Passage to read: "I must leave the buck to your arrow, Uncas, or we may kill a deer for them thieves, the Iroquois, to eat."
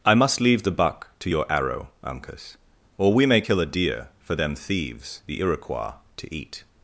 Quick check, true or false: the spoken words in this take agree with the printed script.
true